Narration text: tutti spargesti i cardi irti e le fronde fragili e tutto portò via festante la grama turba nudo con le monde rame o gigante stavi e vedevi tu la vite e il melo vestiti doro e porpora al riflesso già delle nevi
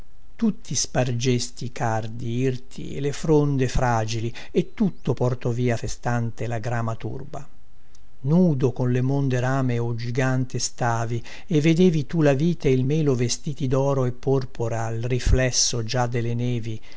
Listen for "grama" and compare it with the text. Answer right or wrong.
right